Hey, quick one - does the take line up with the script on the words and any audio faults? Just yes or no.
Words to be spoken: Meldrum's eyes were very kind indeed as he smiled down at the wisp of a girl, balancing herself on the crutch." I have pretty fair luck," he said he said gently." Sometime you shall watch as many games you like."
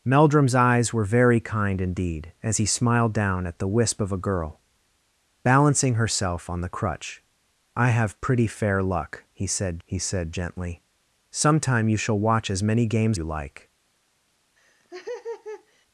no